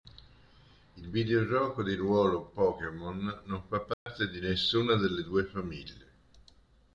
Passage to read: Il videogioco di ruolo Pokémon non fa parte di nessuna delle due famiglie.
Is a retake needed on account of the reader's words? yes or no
no